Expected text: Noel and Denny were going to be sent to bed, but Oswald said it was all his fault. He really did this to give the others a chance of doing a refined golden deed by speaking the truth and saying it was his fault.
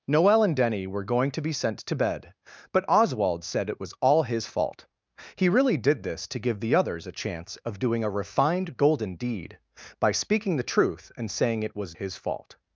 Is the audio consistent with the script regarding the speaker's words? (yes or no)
yes